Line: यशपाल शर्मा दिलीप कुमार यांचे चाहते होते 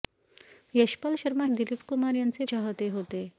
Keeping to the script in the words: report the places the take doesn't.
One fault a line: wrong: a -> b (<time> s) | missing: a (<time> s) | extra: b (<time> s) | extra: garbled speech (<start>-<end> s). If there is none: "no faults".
no faults